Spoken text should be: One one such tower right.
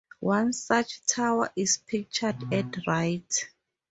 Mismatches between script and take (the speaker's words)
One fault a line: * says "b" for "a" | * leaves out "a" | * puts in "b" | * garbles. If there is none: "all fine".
* leaves out "one"
* puts in "is pictured at"